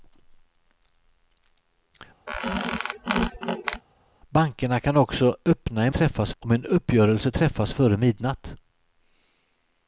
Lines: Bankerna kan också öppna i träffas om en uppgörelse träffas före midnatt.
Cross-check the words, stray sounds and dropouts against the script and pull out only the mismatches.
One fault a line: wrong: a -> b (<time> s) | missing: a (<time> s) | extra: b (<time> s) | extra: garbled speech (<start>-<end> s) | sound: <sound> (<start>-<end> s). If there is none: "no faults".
sound: squeak (2.3-3.8 s)